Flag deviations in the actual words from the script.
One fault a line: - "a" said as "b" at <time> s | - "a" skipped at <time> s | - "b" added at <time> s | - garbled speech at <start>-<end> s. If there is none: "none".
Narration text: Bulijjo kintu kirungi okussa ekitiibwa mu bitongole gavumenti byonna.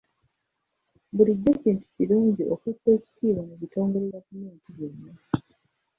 none